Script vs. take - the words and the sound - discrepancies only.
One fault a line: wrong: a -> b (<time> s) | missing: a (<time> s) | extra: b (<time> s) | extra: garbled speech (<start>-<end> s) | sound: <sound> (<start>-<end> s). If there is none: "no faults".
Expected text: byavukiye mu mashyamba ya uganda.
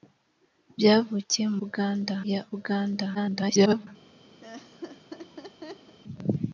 wrong: mashyamba -> uganda (1.6 s)
extra: garbled speech (3.1-3.9 s)
sound: laugh (4.4-6.0 s)